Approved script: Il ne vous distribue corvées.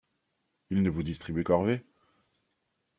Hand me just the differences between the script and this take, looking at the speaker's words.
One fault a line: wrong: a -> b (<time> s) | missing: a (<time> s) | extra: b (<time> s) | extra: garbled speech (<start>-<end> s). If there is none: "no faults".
no faults